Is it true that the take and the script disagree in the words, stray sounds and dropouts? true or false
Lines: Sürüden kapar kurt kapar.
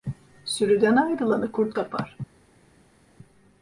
true